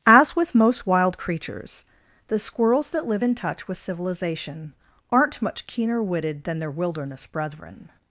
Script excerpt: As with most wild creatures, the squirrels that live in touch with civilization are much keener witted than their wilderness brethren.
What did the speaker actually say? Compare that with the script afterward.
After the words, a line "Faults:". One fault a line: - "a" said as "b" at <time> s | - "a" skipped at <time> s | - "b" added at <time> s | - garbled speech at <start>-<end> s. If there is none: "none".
As with most wild creatures, the squirrels that live in touch with civilization aren't much keener witted than their wilderness brethren.
Faults:
- "are" said as "aren't" at 5.1 s